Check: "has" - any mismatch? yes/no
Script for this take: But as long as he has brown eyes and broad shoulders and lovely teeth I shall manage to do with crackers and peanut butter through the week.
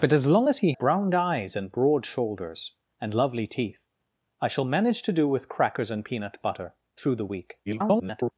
yes